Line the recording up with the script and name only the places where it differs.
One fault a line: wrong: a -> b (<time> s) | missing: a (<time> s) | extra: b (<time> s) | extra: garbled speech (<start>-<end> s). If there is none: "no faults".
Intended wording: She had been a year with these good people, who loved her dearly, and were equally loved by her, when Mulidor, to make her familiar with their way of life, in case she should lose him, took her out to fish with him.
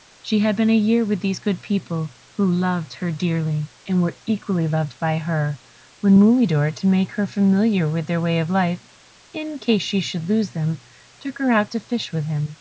wrong: him -> them (10.5 s)